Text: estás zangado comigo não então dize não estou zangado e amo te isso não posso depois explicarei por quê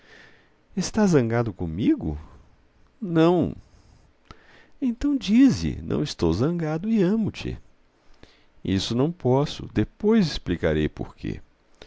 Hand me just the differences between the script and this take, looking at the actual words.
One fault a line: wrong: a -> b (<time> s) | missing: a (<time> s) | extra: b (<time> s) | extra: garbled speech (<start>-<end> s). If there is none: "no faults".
no faults